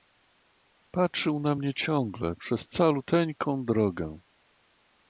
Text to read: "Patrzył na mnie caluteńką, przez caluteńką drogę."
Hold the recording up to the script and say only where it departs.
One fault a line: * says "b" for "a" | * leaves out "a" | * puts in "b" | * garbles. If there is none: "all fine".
* says "ciągle" for "caluteńką"